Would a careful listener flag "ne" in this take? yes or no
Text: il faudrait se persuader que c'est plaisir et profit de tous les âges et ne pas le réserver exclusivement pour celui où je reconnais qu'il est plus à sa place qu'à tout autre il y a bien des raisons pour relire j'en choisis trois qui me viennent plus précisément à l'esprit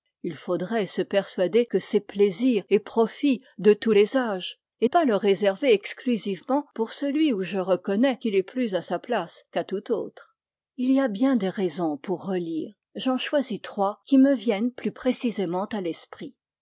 yes